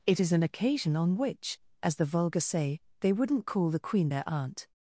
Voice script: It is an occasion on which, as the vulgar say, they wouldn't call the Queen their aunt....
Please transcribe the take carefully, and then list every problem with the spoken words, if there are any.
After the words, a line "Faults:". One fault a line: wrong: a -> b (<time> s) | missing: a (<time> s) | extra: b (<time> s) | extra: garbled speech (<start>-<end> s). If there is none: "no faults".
It is an occasion on which, as the vulgar say, they wouldn't call the Queen their aunt....
Faults:
no faults